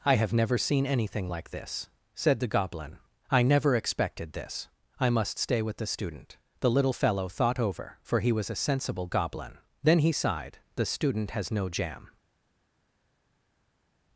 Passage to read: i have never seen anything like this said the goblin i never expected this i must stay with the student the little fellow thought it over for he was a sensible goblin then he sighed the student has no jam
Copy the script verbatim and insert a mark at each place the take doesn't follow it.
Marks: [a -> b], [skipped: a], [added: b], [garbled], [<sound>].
i have never seen anything like this said the goblin i never expected this i must stay with the student the little fellow thought [skipped: it] over for he was a sensible goblin then he sighed the student has no jam